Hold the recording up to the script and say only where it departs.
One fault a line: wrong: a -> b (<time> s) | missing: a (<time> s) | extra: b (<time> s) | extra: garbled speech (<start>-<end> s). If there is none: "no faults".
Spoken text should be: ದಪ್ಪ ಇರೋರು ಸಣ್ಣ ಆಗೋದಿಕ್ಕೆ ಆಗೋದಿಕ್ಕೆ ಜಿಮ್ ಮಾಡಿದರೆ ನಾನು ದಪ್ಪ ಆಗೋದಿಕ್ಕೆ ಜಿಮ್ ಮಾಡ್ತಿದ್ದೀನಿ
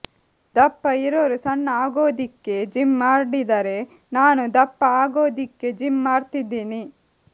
missing: ಆಗೋದಿಕ್ಕೆ (2.5 s)